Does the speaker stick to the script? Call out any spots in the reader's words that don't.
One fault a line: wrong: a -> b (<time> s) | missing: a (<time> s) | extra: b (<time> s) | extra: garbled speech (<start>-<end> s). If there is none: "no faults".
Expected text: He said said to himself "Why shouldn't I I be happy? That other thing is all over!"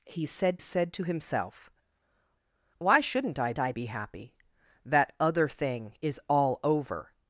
no faults